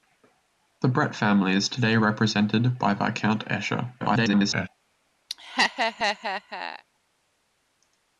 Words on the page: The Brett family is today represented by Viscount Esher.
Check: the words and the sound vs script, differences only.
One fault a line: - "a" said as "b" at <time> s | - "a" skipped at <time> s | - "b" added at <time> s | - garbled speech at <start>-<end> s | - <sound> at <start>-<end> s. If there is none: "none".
- garbled speech at 4.0-4.7 s
- laugh at 5.3-6.8 s